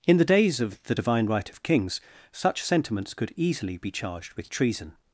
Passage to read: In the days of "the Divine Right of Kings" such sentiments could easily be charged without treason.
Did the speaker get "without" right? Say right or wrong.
wrong